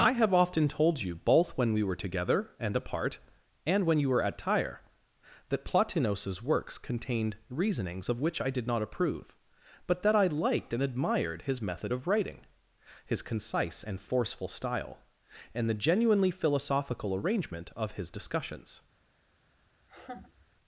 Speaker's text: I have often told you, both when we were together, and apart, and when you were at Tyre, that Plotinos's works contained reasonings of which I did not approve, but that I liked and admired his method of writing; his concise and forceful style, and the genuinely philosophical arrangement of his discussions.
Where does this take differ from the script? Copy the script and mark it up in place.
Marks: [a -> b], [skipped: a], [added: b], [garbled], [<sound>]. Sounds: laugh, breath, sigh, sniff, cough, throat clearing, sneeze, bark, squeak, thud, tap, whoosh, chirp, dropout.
I have often told you, both when we were together, and apart, and when you were at Tyre, that Plotinos's works contained reasonings of which I did not approve, but that I liked and admired his method of writing; his concise and forceful style, and the genuinely philosophical arrangement of his discussions. [laugh]